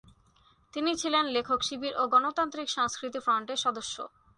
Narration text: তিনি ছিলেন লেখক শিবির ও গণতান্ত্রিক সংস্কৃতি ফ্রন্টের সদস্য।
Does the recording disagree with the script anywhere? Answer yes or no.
no